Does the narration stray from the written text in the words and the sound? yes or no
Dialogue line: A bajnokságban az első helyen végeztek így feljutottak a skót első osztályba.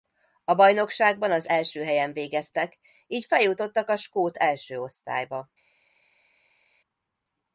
no